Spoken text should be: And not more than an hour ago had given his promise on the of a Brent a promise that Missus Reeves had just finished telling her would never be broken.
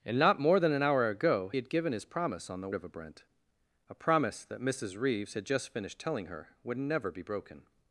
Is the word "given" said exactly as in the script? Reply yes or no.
yes